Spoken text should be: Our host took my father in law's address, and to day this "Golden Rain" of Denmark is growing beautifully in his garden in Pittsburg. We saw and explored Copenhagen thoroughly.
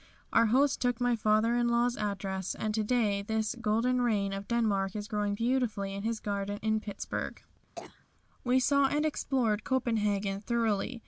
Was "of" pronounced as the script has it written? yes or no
yes